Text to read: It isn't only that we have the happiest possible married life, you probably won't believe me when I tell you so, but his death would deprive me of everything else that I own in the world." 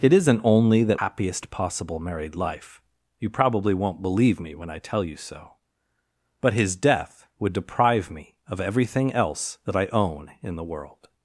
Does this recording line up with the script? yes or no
no